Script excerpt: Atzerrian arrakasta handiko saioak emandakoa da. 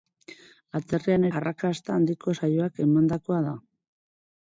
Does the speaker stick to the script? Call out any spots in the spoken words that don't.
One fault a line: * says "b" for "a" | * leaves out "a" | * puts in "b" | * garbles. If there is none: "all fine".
all fine